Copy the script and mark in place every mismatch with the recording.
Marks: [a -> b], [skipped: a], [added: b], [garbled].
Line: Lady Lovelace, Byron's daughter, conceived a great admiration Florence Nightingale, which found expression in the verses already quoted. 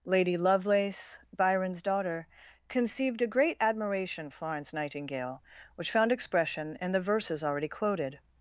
Lady Lovelace, Byron's daughter, conceived a great admiration Florence Nightingale, which found expression in the verses already quoted.